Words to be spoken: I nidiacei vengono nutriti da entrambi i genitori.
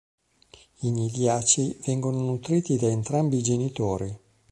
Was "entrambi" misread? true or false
false